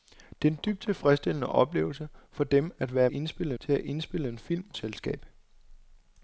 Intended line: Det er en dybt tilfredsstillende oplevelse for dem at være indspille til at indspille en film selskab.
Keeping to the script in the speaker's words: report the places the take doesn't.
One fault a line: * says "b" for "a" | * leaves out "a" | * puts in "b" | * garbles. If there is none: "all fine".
all fine